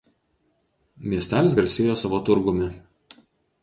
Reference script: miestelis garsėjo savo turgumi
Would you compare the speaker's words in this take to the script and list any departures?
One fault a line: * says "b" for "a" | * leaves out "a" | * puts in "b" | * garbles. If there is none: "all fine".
all fine